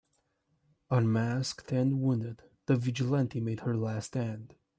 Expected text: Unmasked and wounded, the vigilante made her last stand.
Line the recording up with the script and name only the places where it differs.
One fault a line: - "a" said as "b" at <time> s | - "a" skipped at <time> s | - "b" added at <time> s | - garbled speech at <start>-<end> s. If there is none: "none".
none